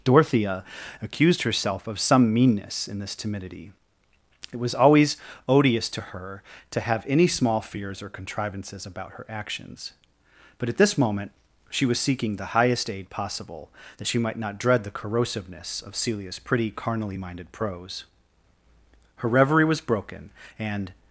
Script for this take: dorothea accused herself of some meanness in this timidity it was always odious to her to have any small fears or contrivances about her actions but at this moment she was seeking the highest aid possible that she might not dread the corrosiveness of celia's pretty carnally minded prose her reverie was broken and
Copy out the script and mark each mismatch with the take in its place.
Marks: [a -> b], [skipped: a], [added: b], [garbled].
dorothea accused herself of some meanness in this timidity it was always odious to her to have any small fears or contrivances about her actions but at this moment she was seeking the highest aid possible that she might not dread the corrosiveness of celia's pretty carnally minded prose her reverie was broken and